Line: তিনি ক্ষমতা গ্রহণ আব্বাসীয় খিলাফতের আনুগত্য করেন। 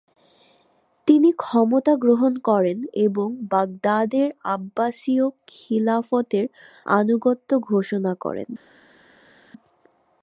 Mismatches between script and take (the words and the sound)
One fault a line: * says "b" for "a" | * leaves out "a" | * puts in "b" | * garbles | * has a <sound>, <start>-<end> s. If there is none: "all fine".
* puts in "করেন এবং বাগদাদের"
* puts in "ঘোষণা"